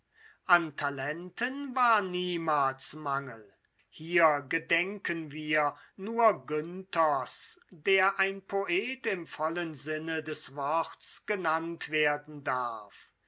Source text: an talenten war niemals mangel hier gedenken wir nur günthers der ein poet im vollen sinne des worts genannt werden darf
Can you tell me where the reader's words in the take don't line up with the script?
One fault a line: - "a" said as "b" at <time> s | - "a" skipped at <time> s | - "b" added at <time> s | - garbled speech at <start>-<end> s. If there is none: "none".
none